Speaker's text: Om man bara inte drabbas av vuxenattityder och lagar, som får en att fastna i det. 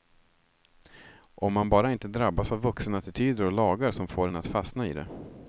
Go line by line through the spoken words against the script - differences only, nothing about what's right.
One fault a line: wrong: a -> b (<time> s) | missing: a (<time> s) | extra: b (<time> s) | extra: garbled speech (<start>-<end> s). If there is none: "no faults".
no faults